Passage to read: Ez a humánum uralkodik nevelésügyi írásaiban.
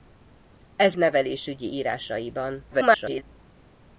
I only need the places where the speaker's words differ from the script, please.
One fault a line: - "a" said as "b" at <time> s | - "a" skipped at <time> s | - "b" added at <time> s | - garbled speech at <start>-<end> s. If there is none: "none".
- "a humánum uralkodik" skipped at 0.9 s
- garbled speech at 2.7-3.2 s